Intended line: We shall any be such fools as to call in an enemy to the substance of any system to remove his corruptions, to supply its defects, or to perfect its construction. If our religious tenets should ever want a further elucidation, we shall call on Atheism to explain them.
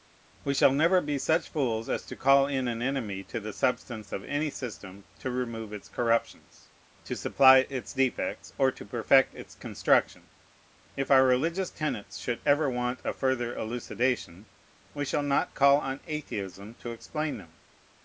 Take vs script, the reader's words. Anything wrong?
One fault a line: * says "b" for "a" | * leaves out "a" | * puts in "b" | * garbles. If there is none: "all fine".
* says "never" for "any"
* says "its" for "his"
* puts in "not"